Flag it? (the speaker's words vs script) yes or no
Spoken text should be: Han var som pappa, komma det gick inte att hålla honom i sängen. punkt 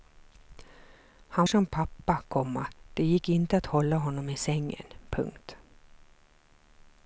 yes